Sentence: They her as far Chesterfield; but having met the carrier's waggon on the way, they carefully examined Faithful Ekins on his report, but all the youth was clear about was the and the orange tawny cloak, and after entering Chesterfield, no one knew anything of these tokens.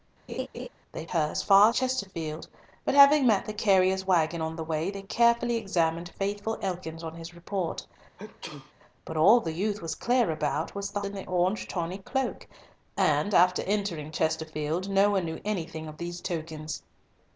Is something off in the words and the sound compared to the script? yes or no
yes